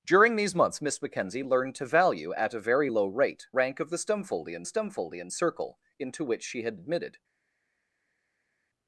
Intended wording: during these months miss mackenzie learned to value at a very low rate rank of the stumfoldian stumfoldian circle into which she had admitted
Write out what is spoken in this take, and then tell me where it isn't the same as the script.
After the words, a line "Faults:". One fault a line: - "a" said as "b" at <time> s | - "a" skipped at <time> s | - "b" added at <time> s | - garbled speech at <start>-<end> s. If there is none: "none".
during these months miss mackenzie learned to value at a very low rate rank of the stumfoldian stumfoldian circle into which she had admitted
Faults:
none